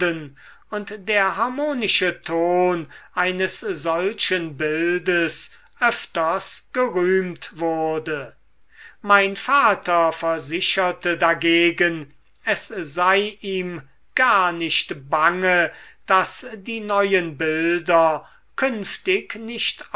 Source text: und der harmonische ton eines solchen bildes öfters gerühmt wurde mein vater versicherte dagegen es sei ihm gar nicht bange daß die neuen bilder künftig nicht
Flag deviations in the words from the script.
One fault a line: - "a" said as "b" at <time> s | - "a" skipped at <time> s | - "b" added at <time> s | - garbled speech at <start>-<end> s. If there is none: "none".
none